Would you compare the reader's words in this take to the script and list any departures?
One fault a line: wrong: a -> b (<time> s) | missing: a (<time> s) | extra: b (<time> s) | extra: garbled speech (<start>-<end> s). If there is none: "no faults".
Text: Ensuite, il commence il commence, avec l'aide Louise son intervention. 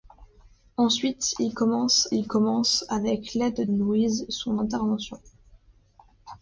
no faults